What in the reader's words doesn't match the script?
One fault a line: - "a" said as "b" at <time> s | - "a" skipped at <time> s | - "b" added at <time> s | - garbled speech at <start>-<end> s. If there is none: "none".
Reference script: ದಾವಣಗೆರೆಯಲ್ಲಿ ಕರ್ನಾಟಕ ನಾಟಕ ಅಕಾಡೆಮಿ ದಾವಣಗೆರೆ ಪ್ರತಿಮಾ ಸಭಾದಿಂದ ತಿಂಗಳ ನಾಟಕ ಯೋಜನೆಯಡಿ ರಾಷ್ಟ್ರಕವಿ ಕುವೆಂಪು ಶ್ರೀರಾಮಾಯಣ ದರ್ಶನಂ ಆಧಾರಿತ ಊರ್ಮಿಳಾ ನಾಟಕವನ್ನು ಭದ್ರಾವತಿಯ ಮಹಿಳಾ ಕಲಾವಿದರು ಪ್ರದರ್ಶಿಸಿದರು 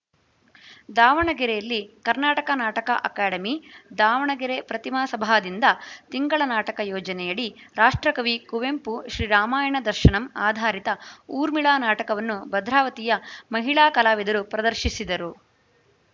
none